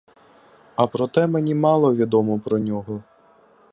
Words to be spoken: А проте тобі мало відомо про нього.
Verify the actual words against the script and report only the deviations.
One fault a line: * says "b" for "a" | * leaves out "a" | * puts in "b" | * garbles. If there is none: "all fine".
* says "мені" for "тобі"